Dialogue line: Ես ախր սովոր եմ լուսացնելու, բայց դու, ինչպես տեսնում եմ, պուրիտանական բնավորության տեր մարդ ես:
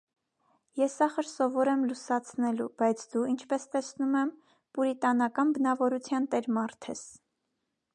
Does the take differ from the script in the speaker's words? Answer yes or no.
no